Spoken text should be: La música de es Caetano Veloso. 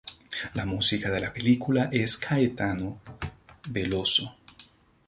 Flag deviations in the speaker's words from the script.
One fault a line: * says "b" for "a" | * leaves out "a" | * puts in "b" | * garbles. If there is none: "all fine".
* puts in "la película"